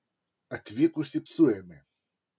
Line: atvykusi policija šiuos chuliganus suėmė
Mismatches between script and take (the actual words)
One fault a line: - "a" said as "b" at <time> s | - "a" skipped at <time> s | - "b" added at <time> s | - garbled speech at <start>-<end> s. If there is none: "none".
- "policija šiuos chuliganus" skipped at 1.2 s